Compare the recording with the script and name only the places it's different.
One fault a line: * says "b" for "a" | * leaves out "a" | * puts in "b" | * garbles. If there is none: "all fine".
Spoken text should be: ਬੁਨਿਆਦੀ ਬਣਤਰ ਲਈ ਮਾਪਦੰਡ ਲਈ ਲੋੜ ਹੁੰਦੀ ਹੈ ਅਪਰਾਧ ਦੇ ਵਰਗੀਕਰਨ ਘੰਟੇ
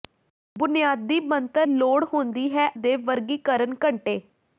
* leaves out "ਲਈ ਮਾਪਦੰਡ ਲਈ"
* leaves out "ਅਪਰਾਧ"